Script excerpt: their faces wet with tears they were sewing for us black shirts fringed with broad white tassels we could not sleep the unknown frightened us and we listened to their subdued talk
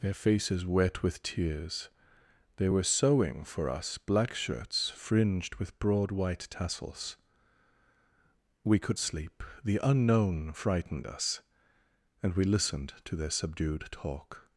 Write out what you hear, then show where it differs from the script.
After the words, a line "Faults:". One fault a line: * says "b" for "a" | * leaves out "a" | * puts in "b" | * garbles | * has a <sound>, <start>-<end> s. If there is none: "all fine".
their faces wet with tears they were sewing for us black shirts fringed with broad white tassels we could sleep the unknown frightened us and we listened to their subdued talk
Faults:
* leaves out "not"